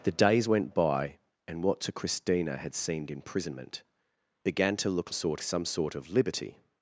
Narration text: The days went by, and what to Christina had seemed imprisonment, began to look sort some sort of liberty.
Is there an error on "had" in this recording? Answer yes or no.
no